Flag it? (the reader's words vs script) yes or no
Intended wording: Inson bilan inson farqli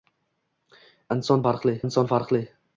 yes